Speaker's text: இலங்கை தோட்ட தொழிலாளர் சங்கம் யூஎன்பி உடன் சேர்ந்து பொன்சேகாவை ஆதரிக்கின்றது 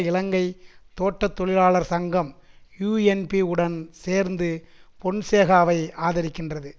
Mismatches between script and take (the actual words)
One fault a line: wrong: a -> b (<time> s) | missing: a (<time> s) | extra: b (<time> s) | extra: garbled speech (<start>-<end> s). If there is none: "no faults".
no faults